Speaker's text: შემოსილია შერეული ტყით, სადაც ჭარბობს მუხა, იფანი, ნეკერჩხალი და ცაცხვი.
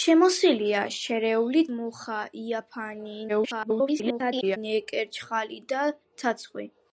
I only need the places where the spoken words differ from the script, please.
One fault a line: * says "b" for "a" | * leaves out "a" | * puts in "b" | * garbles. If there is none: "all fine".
* leaves out "ტყით სადაც ჭარბობს"
* garbles